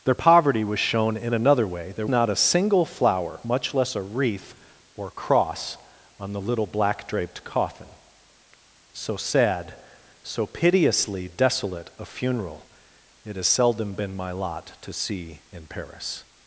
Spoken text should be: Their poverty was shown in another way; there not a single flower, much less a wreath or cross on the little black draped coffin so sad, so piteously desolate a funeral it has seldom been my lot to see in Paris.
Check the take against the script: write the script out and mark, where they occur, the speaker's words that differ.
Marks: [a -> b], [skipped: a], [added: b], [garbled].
Their poverty was shown in another way; there not a single flower, much less a wreath or cross on the little black draped coffin so sad, so piteously desolate a funeral it has seldom been my lot to see in Paris.